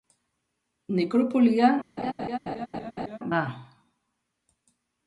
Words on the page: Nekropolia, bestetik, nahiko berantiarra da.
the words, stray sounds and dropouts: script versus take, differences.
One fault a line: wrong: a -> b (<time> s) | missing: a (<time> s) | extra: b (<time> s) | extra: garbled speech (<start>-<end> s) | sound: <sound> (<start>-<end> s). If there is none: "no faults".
missing: bestetik nahiko berantiarra (1.7 s)
sound: laugh (2.0-3.2 s)